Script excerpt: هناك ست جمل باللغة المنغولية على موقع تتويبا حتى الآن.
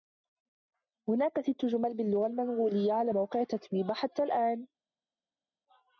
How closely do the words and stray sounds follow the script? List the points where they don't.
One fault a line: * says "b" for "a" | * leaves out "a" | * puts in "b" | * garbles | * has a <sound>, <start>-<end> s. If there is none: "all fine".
all fine